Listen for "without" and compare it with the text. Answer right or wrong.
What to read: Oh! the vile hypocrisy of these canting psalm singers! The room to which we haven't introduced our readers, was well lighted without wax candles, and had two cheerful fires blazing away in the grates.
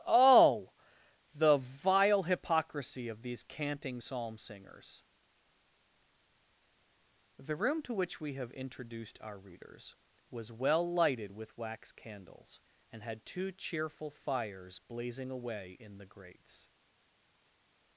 wrong